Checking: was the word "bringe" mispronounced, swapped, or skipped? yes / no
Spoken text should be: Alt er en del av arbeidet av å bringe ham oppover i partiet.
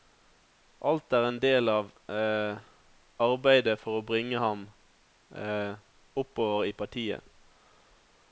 no